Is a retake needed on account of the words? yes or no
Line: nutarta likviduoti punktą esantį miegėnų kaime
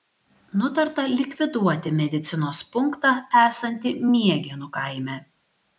yes